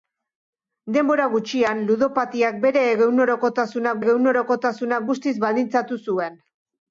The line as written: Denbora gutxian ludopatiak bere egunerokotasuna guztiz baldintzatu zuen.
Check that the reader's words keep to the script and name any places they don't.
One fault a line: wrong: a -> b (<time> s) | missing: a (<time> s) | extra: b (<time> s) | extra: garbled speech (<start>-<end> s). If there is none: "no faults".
extra: egunerokotasuna (4.0 s)